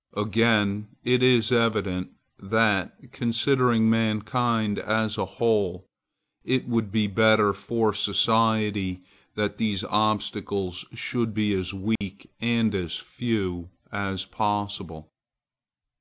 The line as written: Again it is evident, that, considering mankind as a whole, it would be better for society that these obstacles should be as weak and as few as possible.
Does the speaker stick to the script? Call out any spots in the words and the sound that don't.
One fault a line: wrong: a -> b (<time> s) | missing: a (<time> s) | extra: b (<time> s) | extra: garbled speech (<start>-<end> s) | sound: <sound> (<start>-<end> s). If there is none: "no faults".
sound: dropout (12.0-12.0 s)